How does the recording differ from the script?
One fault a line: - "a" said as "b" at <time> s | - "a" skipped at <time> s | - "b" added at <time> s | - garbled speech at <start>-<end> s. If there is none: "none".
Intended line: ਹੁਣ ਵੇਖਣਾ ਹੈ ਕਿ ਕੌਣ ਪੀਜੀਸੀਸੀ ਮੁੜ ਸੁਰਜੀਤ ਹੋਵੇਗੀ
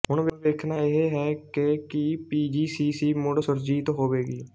- "ਇਹ" added at 0.8 s
- "ਕੌਣ" said as "ਕੀ" at 1.9 s